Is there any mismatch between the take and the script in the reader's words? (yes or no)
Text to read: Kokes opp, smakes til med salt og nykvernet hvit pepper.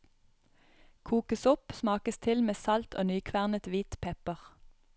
no